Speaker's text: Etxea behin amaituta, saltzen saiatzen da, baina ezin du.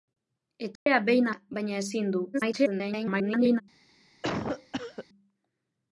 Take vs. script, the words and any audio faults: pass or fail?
fail